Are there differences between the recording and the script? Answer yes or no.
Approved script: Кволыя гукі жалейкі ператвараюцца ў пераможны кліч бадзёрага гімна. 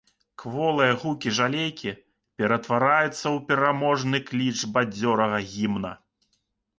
no